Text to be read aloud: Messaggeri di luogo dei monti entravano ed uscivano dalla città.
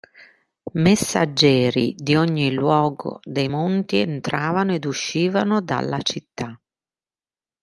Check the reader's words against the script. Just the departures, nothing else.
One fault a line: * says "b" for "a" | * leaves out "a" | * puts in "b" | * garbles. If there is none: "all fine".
* puts in "ogni"